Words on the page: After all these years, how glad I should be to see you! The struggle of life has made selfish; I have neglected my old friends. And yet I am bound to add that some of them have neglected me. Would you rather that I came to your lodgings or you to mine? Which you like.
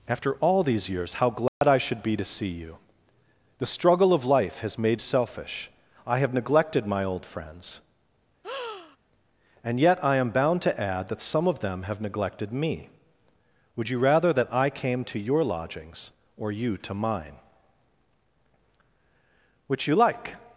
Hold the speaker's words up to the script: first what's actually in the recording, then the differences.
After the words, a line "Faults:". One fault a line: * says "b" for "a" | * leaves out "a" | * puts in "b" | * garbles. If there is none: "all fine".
After all these years, how glad I should be to see you! The struggle of life has made selfish; I have neglected my old friends. And yet I am bound to add that some of them have neglected me. Would you rather that I came to your lodgings or you to mine? Which you like.
Faults:
all fine